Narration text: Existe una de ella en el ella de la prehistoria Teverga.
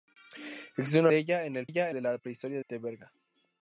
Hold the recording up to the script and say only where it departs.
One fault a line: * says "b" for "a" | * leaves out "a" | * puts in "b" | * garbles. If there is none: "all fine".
all fine